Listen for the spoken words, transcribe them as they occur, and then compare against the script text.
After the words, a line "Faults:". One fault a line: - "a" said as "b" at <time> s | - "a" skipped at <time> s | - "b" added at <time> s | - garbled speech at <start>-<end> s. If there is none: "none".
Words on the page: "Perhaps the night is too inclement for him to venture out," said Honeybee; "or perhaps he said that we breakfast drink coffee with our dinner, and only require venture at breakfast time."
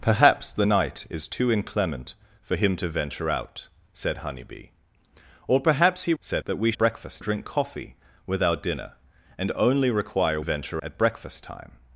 "Perhaps the night is too inclement for him to venture out," said Honeybee; "or perhaps he said that we breakfast drink coffee with our dinner, and only require venture at breakfast time."
Faults:
none